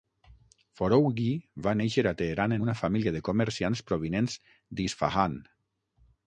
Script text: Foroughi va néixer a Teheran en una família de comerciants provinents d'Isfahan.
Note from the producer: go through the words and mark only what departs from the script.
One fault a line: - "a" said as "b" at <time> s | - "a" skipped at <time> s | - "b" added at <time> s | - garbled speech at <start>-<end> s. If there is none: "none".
none